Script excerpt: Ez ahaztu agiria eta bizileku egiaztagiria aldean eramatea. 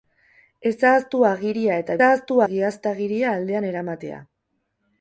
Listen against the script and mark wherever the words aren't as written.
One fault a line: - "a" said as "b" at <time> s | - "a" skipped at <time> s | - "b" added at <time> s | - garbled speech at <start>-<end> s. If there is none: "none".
- "bizileku" said as "ahaztu" at 2.1 s